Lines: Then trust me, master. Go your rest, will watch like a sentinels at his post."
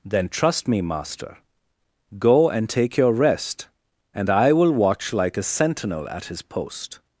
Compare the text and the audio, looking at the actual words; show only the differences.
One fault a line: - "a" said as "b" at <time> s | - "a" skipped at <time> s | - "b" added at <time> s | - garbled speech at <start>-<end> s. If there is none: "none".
- "and take" added at 2.5 s
- "and I" added at 4.2 s
- "sentinels" said as "sentinel" at 5.4 s